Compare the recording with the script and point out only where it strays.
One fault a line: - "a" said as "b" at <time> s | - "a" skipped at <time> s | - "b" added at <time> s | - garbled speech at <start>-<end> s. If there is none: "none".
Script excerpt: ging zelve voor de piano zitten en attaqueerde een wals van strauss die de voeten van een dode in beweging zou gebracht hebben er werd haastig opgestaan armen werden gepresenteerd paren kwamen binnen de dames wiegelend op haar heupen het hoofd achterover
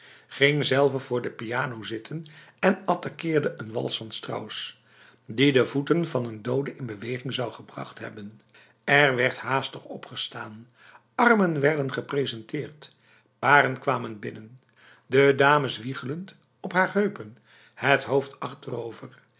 none